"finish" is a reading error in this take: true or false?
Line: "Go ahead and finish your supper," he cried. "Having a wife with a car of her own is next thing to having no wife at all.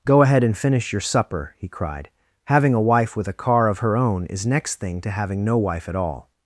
false